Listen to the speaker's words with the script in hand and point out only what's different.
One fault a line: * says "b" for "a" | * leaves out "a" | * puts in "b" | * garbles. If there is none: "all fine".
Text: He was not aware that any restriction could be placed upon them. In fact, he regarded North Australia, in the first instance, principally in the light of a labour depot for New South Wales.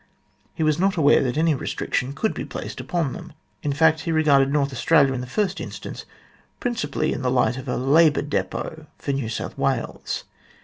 all fine